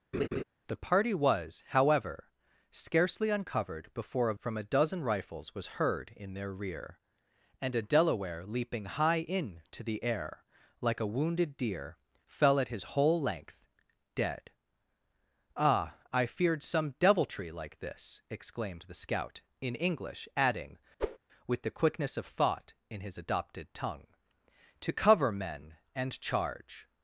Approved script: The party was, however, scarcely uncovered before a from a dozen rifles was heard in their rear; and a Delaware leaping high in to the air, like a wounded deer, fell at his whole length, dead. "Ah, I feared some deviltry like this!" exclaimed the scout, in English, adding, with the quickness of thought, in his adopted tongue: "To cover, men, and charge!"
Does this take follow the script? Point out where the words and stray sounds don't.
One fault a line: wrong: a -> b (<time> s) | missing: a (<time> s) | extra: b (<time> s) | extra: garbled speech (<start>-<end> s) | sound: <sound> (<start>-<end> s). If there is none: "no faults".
sound: laugh (0.1-0.4 s)
sound: whoosh (21.0-21.2 s)